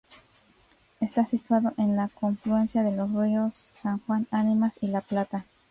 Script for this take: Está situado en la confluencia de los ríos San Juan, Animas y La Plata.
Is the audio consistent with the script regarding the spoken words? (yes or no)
yes